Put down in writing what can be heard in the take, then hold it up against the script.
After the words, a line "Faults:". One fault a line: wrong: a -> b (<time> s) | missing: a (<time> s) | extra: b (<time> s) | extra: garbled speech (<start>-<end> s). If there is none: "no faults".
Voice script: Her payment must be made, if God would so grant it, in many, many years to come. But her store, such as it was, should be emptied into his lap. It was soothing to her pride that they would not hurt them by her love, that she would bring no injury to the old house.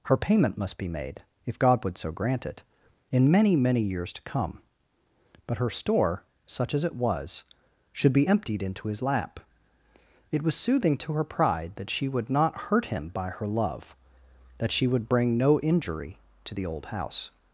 Her payment must be made, if God would so grant it, in many, many years to come. But her store, such as it was, should be emptied into his lap. It was soothing to her pride that she would not hurt him by her love, that she would bring no injury to the old house.
Faults:
wrong: they -> she (11.9 s)
wrong: them -> him (12.9 s)